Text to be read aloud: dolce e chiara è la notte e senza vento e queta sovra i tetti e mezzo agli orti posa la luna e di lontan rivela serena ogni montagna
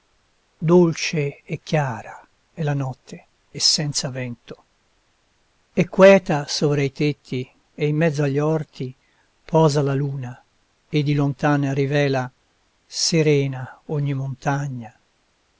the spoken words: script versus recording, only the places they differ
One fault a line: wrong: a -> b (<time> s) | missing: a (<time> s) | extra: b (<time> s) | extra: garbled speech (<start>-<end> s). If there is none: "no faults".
extra: in (7.9 s)